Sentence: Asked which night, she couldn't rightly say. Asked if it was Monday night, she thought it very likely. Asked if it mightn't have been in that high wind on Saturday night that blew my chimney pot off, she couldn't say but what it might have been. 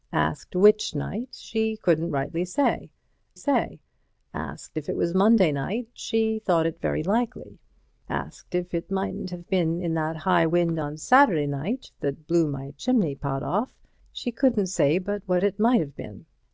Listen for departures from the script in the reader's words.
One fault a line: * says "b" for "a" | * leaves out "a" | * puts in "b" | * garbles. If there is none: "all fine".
* puts in "say"